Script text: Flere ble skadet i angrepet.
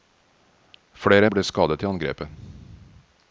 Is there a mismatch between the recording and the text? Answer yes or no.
no